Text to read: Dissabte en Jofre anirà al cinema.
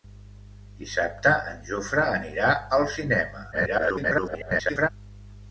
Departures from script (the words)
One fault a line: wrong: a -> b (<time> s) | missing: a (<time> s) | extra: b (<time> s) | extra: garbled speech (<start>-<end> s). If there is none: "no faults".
extra: garbled speech (3.5-4.9 s)